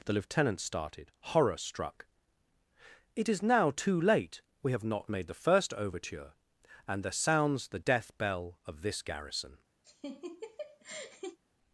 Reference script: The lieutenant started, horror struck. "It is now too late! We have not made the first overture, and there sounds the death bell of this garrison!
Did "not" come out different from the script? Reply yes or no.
no